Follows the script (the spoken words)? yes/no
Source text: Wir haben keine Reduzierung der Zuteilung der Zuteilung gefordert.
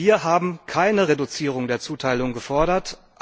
no